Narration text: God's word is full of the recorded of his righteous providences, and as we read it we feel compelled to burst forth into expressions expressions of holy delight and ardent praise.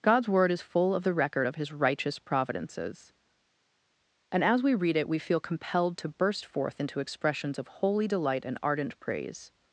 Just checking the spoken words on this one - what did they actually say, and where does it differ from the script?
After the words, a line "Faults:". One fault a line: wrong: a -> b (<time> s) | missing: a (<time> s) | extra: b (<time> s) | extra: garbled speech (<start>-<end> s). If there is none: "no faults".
God's word is full of the record of his righteous providences, and as we read it we feel compelled to burst forth into expressions of holy delight and ardent praise.
Faults:
wrong: recorded -> record (1.1 s)
missing: expressions (7.6 s)